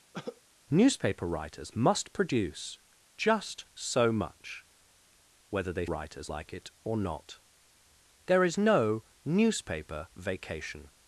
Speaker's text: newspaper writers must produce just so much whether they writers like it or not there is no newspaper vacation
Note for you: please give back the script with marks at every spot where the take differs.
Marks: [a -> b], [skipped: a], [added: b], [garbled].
newspaper writers must produce just so much whether they writers like it or not there is no newspaper vacation